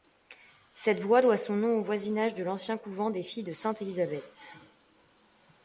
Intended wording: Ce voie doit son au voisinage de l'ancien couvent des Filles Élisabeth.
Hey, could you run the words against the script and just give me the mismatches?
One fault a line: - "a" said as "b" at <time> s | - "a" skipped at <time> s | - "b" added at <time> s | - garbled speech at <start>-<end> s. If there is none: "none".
- "Ce" said as "Cette" at 0.7 s
- "nom" added at 1.6 s
- "de Sainte" added at 3.4 s